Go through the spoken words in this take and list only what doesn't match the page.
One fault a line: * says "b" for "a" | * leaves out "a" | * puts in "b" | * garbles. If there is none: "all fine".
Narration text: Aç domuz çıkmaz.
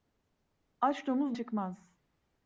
all fine